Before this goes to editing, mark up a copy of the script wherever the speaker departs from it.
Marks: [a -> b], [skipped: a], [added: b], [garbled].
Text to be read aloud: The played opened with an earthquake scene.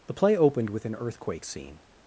The [played -> play] opened with an earthquake scene.